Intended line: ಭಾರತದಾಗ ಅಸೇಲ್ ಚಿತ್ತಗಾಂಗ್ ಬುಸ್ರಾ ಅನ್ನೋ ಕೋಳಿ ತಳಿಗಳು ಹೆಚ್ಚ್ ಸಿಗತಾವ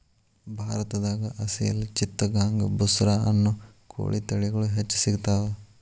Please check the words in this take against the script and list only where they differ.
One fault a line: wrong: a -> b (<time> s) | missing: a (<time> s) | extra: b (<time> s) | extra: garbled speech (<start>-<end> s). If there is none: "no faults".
no faults